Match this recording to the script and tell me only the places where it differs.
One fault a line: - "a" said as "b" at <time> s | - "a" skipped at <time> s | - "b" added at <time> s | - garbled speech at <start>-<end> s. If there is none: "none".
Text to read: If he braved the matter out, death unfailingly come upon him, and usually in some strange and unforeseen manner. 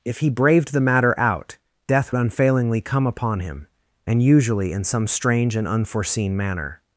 none